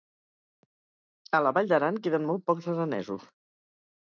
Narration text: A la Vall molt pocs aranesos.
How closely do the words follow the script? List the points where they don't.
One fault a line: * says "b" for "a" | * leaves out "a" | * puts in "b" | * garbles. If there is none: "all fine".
* puts in "d'Aran queden"